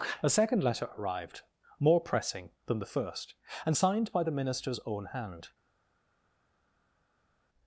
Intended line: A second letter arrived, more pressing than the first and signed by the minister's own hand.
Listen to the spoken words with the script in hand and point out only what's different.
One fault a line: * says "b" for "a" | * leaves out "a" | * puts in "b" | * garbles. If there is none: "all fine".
all fine